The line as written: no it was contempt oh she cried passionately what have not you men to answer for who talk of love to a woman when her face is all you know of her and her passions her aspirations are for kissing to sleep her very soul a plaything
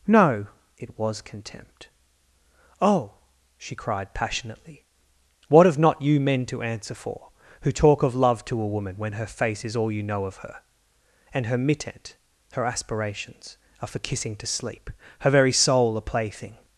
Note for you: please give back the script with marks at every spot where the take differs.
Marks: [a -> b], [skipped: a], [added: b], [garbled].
no it was contempt oh she cried passionately what have not you men to answer for who talk of love to a woman when her face is all you know of her and her [passions -> mittent] her aspirations are for kissing to sleep her very soul a plaything